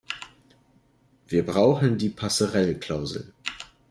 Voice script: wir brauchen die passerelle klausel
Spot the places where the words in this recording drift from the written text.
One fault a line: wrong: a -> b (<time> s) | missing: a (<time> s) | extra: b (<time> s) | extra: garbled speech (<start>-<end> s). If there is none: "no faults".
no faults